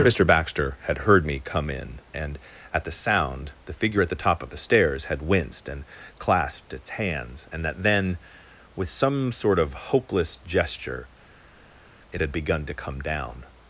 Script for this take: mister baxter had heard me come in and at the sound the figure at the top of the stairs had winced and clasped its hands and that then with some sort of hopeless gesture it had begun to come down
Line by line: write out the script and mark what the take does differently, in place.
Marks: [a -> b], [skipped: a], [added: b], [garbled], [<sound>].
mister baxter had heard me come in and at the sound the figure at the top of the stairs had winced and clasped its hands and that then with some sort of hopeless gesture it had begun to come down